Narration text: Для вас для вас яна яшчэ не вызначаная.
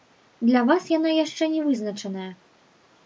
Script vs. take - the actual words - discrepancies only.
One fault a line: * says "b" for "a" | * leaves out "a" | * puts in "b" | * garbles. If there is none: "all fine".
* leaves out "для вас"